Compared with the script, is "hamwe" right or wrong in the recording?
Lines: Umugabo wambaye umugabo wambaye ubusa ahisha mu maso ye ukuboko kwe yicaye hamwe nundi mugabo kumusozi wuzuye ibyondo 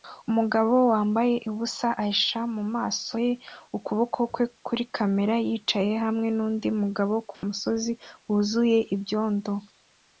right